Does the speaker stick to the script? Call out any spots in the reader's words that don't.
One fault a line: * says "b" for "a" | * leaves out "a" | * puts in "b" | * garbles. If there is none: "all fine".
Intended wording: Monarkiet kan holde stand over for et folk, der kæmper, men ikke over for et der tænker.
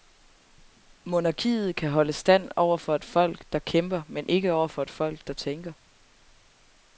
* puts in "folk"